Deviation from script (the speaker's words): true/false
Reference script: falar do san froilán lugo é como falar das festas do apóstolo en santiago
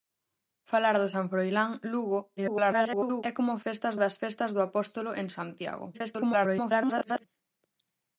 true